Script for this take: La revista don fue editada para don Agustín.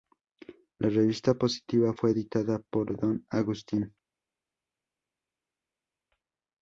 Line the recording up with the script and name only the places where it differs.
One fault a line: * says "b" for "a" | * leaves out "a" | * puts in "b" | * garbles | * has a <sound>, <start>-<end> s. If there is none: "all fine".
* says "positiva" for "don"
* says "por" for "para"